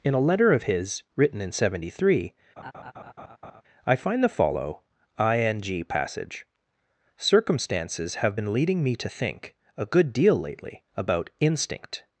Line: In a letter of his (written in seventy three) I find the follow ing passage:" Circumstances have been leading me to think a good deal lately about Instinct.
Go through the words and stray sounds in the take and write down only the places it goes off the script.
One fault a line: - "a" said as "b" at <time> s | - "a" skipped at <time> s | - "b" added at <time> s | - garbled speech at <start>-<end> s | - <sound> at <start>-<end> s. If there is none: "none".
- laugh at 2.6-3.6 s